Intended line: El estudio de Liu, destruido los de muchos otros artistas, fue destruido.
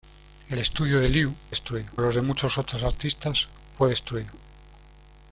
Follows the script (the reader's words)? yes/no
yes